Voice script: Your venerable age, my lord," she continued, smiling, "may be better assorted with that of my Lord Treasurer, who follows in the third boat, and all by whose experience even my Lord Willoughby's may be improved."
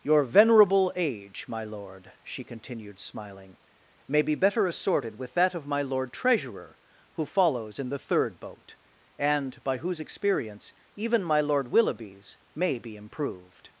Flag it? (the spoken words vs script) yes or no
yes